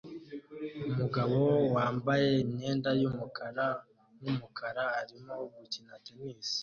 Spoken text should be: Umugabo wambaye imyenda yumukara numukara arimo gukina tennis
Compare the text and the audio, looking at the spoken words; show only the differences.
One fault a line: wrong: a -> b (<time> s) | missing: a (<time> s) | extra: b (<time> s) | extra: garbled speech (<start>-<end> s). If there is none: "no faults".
no faults